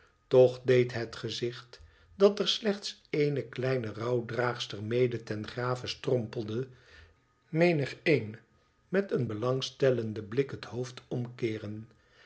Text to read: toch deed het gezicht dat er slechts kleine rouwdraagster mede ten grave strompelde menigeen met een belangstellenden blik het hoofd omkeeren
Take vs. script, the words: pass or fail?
fail